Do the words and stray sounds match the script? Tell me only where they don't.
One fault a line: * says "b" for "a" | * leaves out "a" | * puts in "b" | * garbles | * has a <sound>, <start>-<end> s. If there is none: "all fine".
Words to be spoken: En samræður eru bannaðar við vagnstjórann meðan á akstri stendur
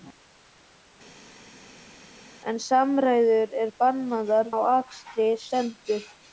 * leaves out "við vagnstjórann meðan"